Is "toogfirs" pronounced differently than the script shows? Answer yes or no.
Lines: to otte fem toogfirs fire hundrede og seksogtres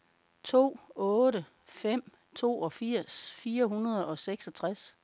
no